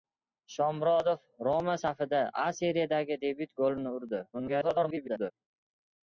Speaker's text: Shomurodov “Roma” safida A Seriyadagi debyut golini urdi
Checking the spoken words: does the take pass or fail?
fail